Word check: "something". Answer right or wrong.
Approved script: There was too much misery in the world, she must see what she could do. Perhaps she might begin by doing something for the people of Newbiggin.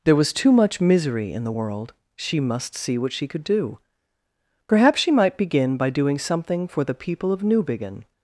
right